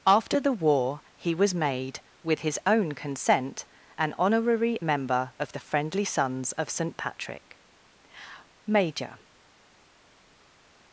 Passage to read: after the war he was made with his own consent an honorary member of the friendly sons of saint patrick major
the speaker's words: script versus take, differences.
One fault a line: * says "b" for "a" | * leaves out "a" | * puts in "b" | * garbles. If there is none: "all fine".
all fine